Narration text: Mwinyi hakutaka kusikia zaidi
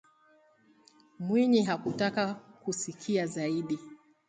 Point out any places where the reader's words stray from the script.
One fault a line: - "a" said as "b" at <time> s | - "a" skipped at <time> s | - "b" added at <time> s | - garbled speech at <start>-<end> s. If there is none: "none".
none